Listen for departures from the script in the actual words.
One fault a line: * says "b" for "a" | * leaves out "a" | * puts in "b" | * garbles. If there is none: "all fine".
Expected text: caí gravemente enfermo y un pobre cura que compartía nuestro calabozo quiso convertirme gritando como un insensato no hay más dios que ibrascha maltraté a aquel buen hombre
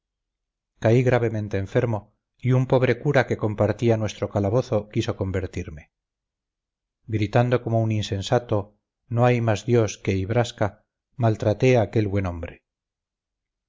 all fine